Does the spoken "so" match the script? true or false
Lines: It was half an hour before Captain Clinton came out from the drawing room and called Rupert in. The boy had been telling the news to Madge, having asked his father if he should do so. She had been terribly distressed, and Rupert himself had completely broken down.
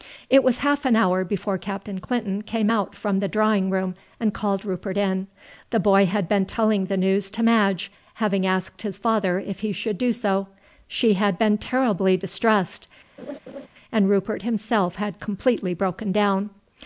true